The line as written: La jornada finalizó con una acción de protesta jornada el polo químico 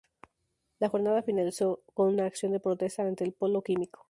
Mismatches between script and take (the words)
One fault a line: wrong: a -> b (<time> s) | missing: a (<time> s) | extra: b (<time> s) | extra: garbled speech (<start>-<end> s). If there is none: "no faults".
wrong: jornada -> ante (3.0 s)